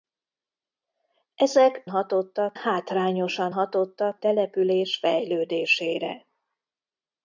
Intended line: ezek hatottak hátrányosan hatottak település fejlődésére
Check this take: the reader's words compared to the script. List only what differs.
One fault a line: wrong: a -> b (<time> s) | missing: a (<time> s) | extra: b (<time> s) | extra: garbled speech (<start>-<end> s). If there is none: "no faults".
no faults